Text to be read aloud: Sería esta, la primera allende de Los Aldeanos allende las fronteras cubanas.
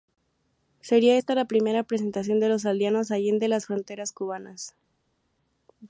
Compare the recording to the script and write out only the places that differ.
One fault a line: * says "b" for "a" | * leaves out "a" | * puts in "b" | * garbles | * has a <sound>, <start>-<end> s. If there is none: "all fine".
* says "presentación" for "allende"